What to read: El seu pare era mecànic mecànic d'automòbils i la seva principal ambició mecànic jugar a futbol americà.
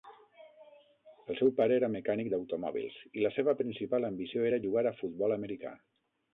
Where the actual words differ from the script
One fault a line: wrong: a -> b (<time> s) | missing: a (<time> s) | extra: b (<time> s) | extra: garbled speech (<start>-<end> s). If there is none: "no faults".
missing: mecànic (2.3 s)
wrong: mecànic -> era (4.5 s)